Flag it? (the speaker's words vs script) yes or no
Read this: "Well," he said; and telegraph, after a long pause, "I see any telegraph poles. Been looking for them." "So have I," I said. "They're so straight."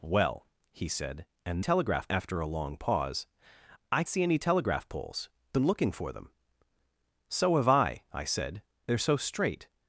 no